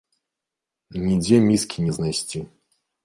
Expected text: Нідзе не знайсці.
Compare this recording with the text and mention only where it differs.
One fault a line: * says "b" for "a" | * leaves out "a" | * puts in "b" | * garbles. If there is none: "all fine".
* puts in "міскі"